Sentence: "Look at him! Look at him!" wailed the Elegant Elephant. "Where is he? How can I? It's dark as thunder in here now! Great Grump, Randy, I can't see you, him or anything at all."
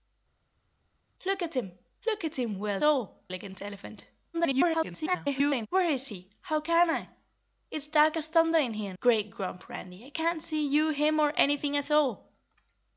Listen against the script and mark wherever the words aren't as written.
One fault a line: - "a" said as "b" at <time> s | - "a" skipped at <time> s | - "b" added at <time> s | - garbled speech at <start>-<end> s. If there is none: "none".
- "the" said as "all" at 2.8 s
- garbled speech at 4.3-5.7 s
- "now" skipped at 8.9 s